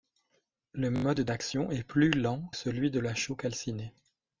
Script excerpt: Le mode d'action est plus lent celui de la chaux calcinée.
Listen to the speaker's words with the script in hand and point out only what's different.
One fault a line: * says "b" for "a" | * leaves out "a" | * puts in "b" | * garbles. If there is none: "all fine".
all fine